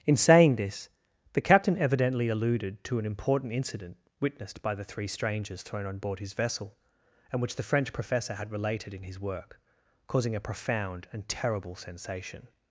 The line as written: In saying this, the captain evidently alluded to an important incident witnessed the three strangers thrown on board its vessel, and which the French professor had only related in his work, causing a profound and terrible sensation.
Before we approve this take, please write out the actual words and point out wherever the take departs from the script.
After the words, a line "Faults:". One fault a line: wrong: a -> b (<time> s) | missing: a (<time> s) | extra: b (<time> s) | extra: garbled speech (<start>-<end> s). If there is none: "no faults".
In saying this, the captain evidently alluded to an important incident witnessed by the three strangers thrown on board his vessel, and which the French professor had related in his work, causing a profound and terrible sensation.
Faults:
extra: by (4.6 s)
wrong: its -> his (6.2 s)
missing: only (8.5 s)